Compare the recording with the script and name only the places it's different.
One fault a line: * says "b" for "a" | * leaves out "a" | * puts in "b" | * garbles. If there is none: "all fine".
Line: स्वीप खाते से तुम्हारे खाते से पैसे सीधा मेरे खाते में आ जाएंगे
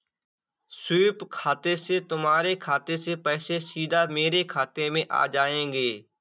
all fine